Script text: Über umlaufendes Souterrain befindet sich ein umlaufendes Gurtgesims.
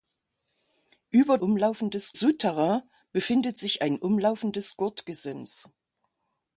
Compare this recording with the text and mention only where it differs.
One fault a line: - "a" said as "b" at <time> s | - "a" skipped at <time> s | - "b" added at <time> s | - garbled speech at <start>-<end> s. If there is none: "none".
none